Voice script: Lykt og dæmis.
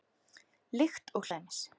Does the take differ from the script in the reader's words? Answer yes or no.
no